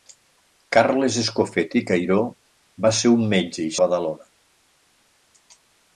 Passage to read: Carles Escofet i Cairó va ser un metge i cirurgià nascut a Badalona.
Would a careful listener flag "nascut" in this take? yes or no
yes